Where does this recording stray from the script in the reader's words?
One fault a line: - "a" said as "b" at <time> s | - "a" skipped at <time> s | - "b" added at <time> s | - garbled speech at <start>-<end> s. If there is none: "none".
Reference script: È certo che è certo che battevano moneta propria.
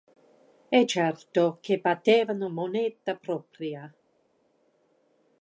- "è certo che" skipped at 1.8 s